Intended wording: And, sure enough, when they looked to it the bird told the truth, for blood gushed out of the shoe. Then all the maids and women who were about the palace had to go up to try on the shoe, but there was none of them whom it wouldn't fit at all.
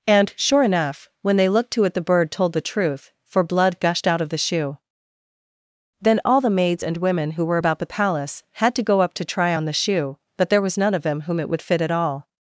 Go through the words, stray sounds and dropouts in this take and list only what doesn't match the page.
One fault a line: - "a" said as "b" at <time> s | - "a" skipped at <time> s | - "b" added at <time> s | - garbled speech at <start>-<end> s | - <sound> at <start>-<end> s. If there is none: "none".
- "wouldn't" said as "would" at 11.5 s